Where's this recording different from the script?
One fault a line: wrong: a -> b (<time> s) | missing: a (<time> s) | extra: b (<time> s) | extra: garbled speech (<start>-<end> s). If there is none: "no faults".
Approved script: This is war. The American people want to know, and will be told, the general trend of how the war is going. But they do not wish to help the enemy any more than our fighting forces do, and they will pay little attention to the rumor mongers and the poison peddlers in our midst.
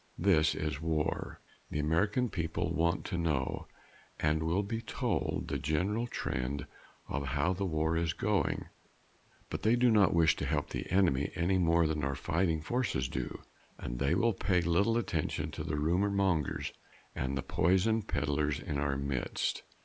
no faults